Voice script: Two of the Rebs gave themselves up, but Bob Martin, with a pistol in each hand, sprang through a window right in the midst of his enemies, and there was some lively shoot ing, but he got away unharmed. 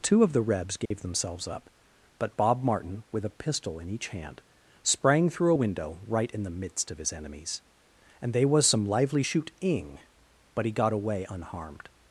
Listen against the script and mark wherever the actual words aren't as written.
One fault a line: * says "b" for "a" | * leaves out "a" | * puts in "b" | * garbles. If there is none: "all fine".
* says "they" for "there"